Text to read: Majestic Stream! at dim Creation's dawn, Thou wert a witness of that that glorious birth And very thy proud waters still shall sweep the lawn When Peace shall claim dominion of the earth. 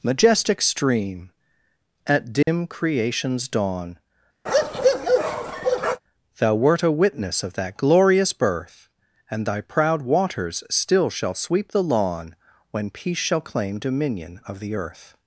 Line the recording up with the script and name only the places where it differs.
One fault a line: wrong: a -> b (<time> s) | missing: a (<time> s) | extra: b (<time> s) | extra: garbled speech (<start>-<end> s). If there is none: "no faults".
missing: that (7.8 s)
missing: very (9.5 s)